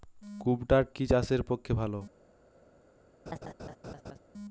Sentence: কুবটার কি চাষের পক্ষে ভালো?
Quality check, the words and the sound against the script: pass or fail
fail